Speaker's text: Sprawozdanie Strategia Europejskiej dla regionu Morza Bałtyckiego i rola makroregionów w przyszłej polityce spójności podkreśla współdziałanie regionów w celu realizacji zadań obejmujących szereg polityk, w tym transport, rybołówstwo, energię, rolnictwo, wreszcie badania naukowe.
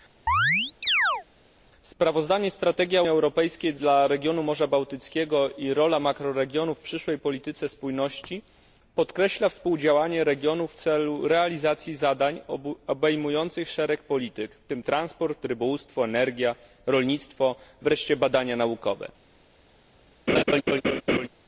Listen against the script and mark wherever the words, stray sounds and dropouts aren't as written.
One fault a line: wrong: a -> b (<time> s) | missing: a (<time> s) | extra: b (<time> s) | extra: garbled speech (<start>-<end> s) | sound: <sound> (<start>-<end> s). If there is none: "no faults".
sound: chirp (0.3-1.2 s)
sound: laugh (20.3-21.3 s)